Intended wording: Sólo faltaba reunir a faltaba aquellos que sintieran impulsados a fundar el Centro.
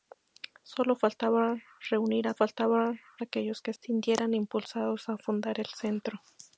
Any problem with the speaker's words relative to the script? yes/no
no